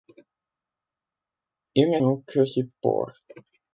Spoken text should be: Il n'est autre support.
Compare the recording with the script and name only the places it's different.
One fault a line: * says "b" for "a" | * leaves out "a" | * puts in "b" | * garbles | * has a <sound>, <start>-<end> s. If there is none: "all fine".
all fine